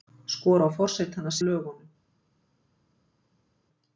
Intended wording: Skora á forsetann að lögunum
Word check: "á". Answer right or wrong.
right